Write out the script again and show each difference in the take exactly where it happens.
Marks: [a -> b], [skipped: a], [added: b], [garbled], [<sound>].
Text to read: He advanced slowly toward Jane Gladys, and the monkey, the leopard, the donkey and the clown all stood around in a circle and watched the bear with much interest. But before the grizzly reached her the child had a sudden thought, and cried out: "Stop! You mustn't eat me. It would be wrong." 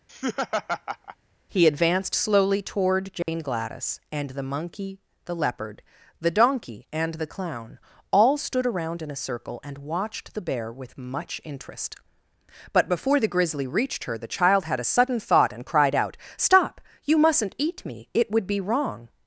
[laugh] He advanced slowly toward Jane [dropout] Gladys, and the monkey, the leopard, the donkey and the clown all stood around in a circle and watched the bear with much interest. But before the grizzly reached her the child had a sudden thought, and cried out: "Stop! You mustn't eat me. It would be wrong."